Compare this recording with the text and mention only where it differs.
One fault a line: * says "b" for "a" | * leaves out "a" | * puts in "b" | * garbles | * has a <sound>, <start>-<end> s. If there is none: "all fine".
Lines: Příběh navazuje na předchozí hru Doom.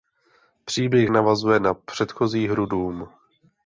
all fine